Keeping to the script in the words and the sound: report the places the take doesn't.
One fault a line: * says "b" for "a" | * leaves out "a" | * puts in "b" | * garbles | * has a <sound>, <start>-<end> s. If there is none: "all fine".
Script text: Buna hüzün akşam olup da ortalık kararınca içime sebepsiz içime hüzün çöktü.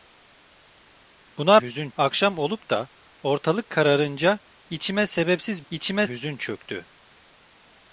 all fine